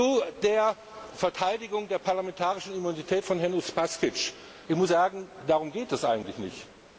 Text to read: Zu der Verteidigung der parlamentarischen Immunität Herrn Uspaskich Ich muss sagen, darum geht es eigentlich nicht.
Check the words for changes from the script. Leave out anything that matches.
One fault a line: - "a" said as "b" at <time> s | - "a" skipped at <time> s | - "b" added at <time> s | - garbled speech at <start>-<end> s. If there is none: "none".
- "von" added at 3.2 s